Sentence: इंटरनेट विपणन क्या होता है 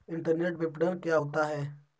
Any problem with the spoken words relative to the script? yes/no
no